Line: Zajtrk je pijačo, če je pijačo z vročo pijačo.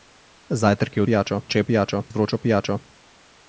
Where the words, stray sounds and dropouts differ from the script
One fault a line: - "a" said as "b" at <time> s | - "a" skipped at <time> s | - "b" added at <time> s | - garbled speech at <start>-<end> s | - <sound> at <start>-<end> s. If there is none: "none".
none